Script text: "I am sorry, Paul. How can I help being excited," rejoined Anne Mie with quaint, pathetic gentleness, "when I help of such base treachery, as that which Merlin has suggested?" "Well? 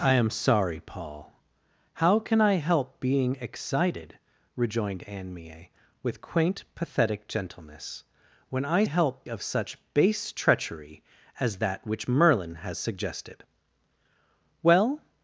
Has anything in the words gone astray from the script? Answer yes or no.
no